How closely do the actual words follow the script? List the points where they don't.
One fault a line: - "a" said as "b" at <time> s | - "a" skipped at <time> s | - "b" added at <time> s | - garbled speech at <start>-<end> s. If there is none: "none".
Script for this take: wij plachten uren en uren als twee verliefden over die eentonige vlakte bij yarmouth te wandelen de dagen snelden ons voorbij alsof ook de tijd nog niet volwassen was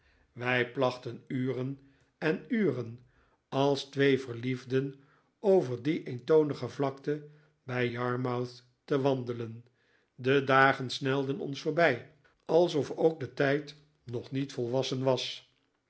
none